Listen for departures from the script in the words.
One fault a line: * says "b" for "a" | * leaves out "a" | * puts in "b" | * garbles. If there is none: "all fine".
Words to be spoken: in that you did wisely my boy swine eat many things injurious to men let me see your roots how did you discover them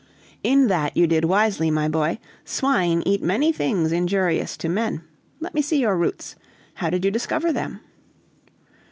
all fine